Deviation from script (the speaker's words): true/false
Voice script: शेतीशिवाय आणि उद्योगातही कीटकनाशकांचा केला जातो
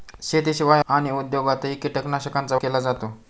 false